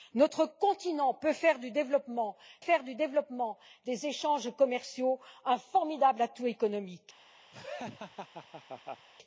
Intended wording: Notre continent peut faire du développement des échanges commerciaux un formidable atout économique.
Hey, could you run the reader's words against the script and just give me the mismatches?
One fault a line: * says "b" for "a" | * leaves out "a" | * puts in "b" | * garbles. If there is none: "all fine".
* puts in "faire du développement"